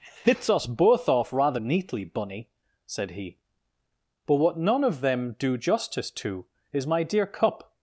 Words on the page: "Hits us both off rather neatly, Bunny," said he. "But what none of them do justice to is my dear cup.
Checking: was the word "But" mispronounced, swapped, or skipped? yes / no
no